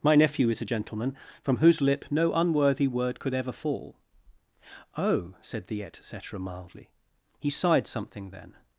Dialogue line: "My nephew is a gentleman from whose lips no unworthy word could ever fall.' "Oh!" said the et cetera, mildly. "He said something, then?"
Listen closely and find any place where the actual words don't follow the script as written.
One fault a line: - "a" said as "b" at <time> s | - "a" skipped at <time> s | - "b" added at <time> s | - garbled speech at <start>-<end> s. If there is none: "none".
- "lips" said as "lip" at 1.8 s
- "said" said as "sighed" at 7.5 s